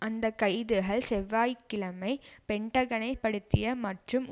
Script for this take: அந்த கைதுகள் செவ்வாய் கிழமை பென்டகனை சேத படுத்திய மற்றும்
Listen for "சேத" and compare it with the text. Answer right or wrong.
wrong